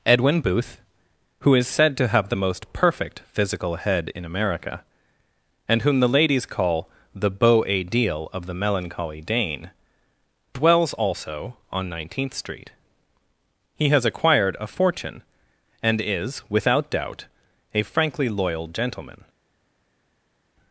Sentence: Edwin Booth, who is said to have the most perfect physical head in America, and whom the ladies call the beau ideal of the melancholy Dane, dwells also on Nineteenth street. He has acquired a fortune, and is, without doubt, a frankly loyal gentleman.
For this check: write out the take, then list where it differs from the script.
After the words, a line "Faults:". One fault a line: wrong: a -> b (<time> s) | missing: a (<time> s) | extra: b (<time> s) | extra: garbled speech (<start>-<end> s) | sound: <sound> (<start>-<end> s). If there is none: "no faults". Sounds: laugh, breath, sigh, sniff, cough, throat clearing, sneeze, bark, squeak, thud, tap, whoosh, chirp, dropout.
Edwin Booth, who is said to have the most perfect physical head in America, and whom the ladies call the beau ideal of the melancholy Dane, dwells also on Nineteenth street. He has acquired a fortune, and is, without doubt, a frankly loyal gentleman.
Faults:
no faults